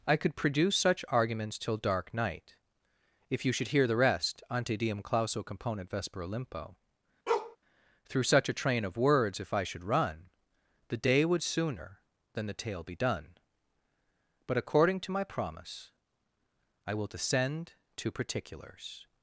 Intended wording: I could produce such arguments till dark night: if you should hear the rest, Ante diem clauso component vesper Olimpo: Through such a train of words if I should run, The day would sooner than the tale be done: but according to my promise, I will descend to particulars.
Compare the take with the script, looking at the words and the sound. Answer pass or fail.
fail